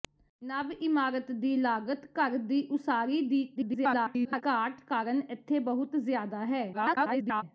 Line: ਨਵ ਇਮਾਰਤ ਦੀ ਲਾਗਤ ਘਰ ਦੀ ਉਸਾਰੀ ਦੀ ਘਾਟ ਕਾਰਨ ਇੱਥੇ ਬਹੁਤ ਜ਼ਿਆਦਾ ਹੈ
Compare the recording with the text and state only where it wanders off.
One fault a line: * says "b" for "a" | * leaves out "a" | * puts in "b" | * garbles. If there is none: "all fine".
* garbles
* garbles